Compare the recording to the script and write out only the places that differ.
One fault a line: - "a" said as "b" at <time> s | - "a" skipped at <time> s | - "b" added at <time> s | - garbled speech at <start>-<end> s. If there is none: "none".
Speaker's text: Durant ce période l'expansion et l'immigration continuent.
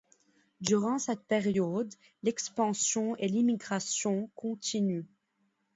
- "ce" said as "cette" at 1.0 s